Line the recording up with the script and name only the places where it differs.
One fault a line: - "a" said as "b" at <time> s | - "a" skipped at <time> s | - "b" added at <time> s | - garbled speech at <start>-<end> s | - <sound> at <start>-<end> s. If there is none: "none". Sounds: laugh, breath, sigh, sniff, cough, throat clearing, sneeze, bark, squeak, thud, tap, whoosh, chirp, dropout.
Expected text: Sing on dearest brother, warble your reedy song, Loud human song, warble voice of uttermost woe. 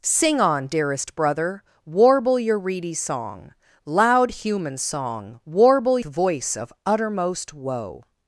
none